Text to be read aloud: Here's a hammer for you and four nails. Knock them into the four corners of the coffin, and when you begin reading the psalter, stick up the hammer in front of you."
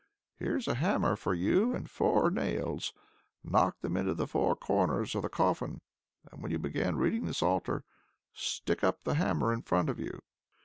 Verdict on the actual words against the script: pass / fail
pass